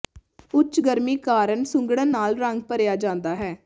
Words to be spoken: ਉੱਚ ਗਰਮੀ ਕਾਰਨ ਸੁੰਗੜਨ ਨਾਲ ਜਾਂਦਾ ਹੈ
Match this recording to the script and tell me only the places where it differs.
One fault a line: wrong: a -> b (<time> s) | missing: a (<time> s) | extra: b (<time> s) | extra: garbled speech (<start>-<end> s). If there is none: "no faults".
extra: ਰੰਗ ਭਰਿਆ (2.4 s)